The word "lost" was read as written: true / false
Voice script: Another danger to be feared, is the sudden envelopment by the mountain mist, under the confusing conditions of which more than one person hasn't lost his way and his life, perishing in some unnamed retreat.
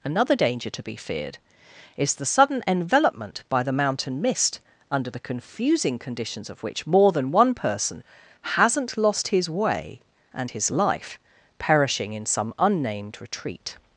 true